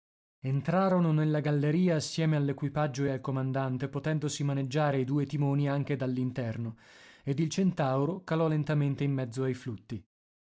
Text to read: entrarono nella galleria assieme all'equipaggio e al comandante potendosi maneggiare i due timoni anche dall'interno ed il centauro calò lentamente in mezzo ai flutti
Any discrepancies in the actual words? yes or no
no